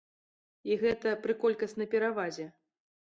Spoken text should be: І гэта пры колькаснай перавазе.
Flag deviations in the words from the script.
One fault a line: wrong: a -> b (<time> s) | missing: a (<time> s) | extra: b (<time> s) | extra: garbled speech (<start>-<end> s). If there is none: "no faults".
no faults